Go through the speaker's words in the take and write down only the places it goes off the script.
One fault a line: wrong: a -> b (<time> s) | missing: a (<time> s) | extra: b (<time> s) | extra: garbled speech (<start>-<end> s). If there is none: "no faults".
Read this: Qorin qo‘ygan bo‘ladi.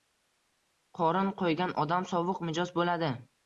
extra: odam sovuq mijoz (1.9 s)